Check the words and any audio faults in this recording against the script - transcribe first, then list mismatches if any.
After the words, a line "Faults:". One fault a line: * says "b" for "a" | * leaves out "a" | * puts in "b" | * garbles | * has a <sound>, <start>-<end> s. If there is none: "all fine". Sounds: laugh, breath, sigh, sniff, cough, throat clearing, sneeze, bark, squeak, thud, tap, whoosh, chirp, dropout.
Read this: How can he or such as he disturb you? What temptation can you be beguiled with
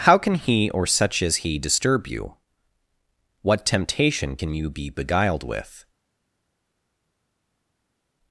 How can he or such as he disturb you? What temptation can you be beguiled with
Faults:
all fine